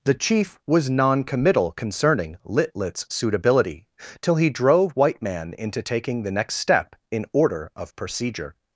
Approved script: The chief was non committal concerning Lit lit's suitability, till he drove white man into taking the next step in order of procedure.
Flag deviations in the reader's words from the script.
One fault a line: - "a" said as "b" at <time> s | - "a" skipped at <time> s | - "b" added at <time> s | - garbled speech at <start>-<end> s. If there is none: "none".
none